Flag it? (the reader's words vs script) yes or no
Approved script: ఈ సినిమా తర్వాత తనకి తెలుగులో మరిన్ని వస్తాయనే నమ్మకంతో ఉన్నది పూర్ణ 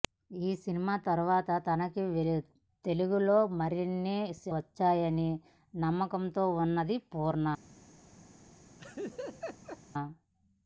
no